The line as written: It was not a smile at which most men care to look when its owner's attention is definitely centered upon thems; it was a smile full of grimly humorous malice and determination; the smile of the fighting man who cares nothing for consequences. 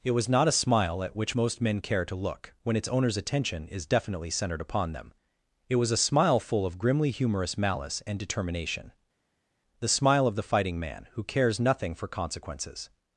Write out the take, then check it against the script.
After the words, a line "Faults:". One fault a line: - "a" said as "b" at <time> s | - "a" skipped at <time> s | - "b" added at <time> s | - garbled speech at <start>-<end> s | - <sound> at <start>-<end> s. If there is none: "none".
It was not a smile at which most men care to look when its owner's attention is definitely centered upon them; it was a smile full of grimly humorous malice and determination; the smile of the fighting man who cares nothing for consequences.
Faults:
- "thems" said as "them" at 4.9 s